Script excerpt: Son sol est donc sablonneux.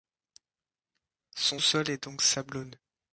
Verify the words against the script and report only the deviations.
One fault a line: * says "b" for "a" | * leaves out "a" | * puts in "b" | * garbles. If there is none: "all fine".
all fine